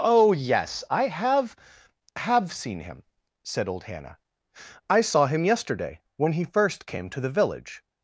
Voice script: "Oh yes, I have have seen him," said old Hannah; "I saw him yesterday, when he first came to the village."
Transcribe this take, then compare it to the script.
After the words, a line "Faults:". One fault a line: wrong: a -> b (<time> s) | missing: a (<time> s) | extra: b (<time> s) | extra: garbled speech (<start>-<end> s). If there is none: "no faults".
"Oh yes, I have have seen him," said old Hannah; "I saw him yesterday, when he first came to the village."
Faults:
no faults